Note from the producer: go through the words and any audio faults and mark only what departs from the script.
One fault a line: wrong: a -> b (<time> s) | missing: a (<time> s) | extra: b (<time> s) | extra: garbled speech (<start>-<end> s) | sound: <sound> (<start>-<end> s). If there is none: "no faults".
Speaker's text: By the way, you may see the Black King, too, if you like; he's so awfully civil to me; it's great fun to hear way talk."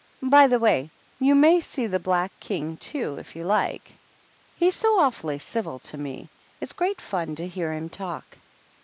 wrong: way -> him (7.7 s)